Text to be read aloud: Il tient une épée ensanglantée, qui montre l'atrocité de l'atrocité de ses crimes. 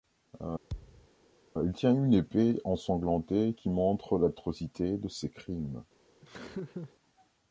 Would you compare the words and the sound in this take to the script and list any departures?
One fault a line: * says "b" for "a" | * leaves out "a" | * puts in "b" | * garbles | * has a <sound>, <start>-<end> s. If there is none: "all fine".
* has a thud, 0.7-1.1 s
* leaves out "l'atrocité de"
* has a laugh, 6.2-6.9 s